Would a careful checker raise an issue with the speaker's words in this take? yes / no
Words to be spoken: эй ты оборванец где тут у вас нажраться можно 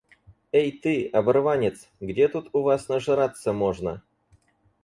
no